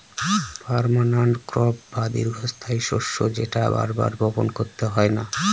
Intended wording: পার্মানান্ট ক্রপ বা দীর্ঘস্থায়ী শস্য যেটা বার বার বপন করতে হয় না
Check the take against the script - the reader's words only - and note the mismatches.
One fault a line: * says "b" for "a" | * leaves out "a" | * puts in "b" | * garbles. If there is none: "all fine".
all fine